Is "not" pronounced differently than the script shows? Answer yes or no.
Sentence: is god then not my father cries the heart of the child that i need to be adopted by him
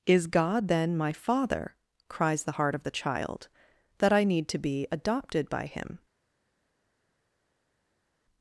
yes